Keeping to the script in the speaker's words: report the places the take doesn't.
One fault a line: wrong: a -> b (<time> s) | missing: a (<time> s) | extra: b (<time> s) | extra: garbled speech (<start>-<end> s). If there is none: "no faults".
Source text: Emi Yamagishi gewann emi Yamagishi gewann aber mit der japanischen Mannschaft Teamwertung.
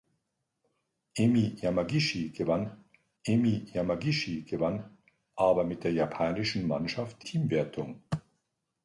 no faults